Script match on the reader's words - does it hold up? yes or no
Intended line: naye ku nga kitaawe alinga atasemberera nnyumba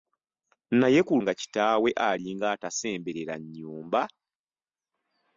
yes